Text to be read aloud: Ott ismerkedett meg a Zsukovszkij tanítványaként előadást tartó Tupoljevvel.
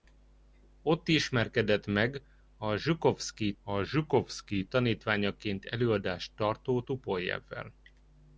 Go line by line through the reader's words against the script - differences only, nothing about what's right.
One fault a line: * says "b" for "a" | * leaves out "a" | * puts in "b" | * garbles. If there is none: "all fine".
* puts in "a Zsukovszkij"